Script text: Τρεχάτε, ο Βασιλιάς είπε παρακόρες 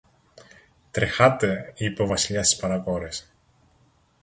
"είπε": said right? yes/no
no